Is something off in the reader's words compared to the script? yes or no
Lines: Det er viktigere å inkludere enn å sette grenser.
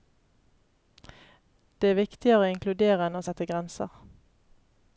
no